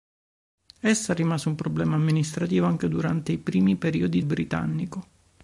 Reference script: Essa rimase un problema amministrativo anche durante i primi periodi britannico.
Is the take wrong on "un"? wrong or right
right